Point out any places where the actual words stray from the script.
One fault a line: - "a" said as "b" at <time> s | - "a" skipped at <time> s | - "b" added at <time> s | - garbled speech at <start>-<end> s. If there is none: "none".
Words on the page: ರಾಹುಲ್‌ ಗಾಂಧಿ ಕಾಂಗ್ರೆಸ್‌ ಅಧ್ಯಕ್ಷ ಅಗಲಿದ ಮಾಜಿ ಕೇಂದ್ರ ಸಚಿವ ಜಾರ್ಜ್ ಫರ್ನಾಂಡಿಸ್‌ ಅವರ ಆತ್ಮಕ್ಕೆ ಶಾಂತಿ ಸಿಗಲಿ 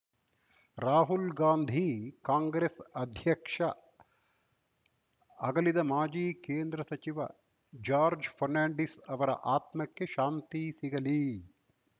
none